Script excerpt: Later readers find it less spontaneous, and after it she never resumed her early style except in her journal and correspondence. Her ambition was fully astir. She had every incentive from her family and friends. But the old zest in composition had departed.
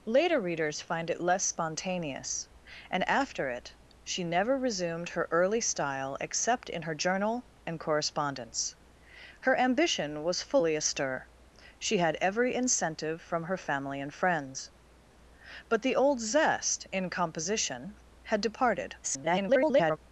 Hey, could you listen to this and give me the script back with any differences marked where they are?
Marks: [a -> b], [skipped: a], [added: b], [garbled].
Later readers find it less spontaneous, and after it she never resumed her early style except in her journal and correspondence. Her ambition was fully astir. She had every incentive from her family and friends. But the old zest in composition had departed. [garbled]